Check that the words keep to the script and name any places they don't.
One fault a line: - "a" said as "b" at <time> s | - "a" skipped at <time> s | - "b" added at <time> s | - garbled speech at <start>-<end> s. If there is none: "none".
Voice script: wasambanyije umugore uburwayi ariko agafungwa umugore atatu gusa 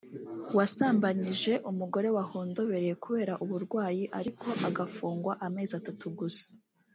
- "wahondobereye kubera" added at 2.2 s
- "umugore" said as "amezi" at 5.5 s